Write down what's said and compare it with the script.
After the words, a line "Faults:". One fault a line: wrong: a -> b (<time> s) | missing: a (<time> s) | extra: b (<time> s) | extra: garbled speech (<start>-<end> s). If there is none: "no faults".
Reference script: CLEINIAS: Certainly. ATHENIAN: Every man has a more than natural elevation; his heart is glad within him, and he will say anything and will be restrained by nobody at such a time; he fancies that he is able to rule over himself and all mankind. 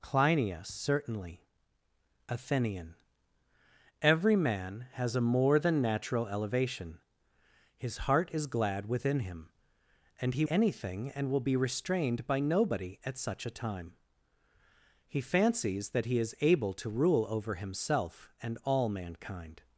CLEINIAS: Certainly. ATHENIAN: Every man has a more than natural elevation; his heart is glad within him, and he anything and will be restrained by nobody at such a time; he fancies that he is able to rule over himself and all mankind.
Faults:
missing: will say (10.4 s)